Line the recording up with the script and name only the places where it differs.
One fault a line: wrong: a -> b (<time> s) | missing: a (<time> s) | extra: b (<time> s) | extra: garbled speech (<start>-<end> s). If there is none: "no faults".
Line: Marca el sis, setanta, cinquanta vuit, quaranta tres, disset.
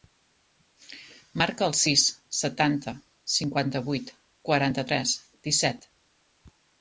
no faults